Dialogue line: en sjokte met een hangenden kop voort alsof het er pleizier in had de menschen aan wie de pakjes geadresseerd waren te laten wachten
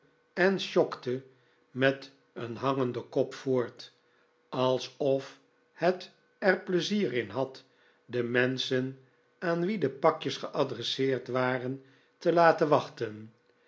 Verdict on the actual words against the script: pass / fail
pass